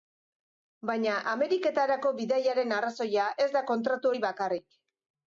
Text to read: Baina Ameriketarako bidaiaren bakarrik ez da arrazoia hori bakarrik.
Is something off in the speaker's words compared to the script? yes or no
yes